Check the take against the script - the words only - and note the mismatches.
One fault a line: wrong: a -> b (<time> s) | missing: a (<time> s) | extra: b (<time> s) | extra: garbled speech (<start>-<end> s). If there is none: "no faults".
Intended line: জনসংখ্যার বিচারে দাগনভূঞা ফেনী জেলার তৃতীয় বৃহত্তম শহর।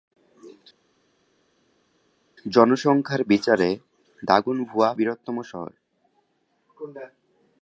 missing: ফেনী জেলার তৃতীয় (4.9 s)